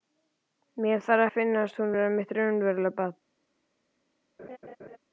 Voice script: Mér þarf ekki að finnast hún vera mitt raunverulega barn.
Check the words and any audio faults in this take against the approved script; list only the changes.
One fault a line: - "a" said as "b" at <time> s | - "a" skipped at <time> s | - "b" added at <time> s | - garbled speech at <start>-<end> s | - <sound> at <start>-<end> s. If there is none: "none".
- "ekki" skipped at 1.2 s
- laugh at 4.4-5.0 s